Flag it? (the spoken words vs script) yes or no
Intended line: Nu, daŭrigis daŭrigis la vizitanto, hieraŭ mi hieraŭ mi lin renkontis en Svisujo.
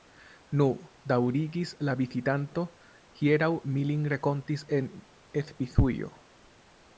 yes